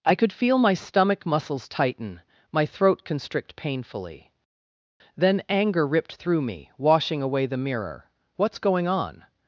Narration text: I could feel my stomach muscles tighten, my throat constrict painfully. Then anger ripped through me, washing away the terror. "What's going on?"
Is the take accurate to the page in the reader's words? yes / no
no